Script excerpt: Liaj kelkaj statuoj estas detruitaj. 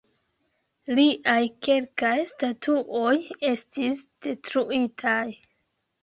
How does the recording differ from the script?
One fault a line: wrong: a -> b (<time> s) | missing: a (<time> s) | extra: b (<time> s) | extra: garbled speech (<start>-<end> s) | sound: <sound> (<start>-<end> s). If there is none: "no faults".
wrong: estas -> estis (3.5 s)